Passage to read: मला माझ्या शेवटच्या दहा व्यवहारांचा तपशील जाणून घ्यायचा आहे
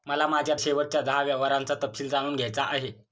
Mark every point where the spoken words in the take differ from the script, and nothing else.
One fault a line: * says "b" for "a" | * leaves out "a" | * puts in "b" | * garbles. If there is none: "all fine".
all fine